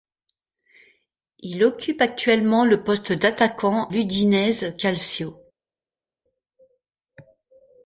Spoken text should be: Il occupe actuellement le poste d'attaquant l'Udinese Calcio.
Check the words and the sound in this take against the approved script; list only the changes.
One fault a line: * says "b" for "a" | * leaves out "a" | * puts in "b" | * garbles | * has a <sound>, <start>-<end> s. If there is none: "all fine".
all fine